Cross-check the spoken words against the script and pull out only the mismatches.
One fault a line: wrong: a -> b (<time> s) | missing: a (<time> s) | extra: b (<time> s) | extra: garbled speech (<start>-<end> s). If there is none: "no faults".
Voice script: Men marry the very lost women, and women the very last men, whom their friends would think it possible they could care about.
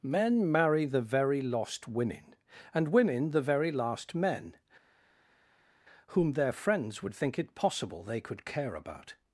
no faults